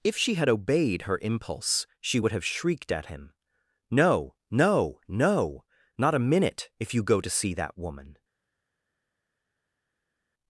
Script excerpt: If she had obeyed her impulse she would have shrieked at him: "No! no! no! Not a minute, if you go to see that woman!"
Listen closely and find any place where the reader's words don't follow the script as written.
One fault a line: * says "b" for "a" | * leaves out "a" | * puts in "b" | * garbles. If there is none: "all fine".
all fine